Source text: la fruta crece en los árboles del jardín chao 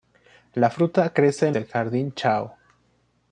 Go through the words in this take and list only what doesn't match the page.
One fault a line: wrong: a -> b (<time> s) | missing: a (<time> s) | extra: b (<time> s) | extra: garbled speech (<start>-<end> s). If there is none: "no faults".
missing: los árboles (1.6 s)